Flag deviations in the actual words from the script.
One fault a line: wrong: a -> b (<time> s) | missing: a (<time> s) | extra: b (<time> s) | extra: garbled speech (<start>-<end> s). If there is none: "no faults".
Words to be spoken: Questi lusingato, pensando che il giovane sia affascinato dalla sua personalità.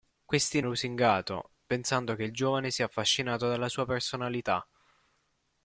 no faults